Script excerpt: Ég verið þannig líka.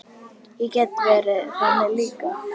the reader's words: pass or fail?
fail